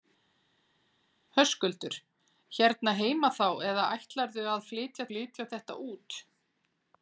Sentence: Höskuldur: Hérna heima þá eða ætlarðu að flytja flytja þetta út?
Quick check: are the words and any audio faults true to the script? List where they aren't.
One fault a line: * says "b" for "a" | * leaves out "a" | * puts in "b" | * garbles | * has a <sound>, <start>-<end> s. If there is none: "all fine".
all fine